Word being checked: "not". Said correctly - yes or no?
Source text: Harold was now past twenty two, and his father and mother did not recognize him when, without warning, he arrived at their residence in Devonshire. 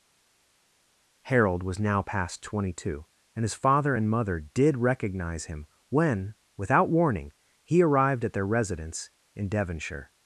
no